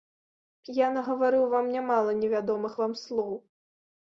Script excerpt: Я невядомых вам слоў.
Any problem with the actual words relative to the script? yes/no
yes